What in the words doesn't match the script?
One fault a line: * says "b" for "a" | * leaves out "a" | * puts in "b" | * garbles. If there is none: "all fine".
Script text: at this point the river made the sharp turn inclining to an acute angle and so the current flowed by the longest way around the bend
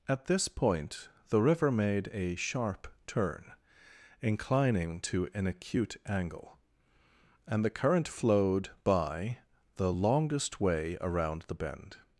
* says "a" for "the"
* leaves out "so"